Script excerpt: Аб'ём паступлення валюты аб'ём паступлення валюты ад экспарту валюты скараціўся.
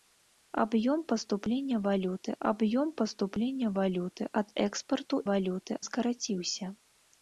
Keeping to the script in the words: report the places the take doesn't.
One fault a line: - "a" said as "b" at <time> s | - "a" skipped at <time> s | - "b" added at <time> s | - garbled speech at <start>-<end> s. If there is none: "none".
none